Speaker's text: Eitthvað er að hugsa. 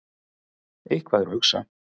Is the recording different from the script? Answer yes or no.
no